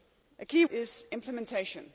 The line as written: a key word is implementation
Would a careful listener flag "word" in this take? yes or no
yes